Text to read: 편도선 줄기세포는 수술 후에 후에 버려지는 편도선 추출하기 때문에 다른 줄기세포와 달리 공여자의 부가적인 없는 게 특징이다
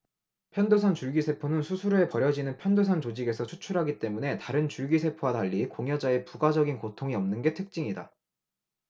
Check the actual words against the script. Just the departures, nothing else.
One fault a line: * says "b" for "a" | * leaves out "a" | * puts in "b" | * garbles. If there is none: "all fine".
* leaves out "후에"
* puts in "조직에서"
* puts in "고통이"